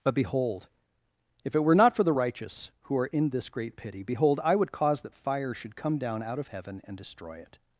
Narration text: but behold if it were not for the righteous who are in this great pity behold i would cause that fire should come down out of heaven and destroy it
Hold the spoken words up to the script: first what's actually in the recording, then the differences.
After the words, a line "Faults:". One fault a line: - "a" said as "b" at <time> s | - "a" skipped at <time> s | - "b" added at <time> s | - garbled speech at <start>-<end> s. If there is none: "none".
but behold if it were not for the righteous who are in this great pity behold i would cause that fire should come down out of heaven and destroy it
Faults:
none